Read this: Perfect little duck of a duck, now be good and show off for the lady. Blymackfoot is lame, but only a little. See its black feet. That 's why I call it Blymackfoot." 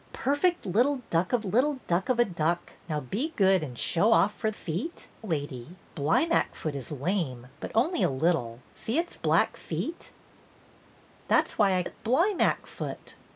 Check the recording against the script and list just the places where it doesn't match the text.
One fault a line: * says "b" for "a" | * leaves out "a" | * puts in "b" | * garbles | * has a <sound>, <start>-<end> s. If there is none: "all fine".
* puts in "little duck of"
* says "feet" for "the"
* leaves out "call"